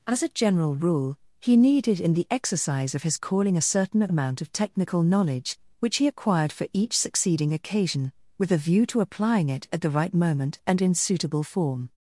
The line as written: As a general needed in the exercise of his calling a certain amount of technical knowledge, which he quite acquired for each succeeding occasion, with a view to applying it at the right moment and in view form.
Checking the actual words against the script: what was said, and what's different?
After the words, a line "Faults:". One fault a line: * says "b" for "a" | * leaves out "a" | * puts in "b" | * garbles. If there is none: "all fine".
As a general rule he needed in the exercise of his calling a certain amount of technical knowledge, which he acquired for each succeeding occasion, with a view to applying it at the right moment and in suitable form.
Faults:
* puts in "rule he"
* leaves out "quite"
* says "suitable" for "view"